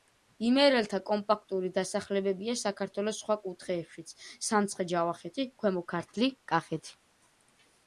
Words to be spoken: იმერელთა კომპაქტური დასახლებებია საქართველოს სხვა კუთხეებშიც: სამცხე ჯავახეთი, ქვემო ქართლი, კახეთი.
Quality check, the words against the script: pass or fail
pass